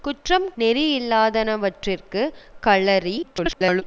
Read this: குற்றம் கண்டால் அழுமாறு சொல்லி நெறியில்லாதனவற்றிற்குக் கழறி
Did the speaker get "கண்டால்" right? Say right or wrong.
wrong